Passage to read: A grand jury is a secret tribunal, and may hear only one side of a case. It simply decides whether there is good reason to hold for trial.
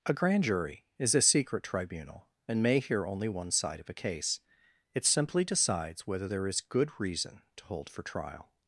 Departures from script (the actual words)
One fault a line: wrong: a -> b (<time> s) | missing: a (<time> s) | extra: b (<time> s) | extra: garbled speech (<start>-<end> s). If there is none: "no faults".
no faults